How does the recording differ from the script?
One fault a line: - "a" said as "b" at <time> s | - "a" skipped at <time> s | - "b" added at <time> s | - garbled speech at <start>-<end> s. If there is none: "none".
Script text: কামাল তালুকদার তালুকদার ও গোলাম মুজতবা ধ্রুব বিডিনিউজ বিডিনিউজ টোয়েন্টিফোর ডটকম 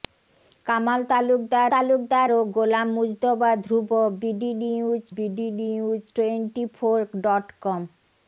none